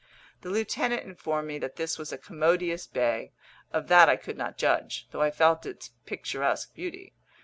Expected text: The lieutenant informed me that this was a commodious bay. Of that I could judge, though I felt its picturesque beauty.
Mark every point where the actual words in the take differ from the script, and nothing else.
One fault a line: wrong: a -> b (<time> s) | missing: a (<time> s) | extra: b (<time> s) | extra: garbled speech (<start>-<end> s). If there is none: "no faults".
extra: not (4.4 s)